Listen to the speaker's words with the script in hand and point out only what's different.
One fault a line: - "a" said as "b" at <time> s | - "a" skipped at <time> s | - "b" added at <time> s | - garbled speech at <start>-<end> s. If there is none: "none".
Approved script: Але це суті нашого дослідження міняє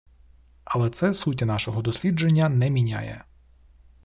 - "не" added at 2.5 s